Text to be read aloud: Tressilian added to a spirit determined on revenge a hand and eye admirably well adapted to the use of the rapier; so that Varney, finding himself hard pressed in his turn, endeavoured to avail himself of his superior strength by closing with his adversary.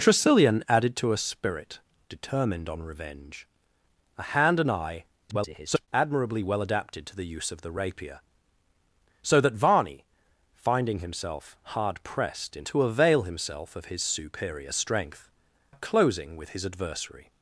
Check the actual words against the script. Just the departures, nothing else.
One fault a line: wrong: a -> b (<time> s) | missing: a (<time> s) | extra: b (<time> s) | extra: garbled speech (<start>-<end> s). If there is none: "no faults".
extra: garbled speech (5.3-5.9 s)
missing: his turn endeavoured (12.6 s)
missing: by (15.3 s)